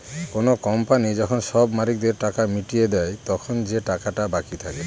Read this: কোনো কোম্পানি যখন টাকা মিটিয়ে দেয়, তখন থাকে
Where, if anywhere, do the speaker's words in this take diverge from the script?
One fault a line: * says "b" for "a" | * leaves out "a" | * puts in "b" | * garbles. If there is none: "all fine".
* puts in "সব মালিকদের"
* puts in "যে টাকাটা বাকি"